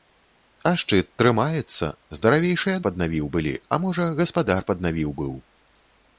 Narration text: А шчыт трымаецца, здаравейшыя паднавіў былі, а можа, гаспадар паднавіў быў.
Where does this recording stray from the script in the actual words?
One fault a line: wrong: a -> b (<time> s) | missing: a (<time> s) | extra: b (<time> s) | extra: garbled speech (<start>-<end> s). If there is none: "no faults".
no faults